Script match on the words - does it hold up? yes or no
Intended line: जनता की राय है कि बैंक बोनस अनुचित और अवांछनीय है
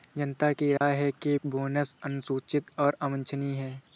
no